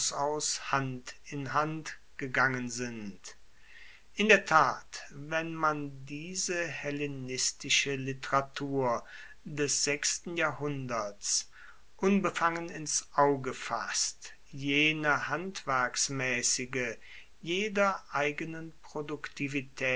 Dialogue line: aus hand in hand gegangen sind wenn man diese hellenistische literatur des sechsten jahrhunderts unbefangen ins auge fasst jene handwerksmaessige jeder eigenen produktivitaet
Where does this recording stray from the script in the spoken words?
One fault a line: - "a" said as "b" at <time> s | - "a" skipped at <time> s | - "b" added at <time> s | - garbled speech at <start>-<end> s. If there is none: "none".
- "in der tat" added at 4.2 s